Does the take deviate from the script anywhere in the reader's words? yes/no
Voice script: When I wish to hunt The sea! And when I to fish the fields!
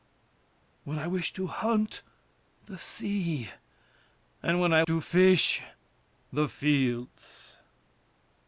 no